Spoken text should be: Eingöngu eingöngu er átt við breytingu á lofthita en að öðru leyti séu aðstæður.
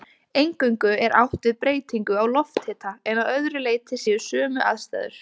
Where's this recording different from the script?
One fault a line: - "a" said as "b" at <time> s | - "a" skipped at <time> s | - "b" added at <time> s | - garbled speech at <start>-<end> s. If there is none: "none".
- "eingöngu" skipped at 0.9 s
- "sömu" added at 4.3 s